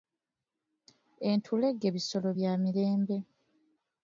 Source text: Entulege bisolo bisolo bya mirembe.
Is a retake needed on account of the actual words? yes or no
yes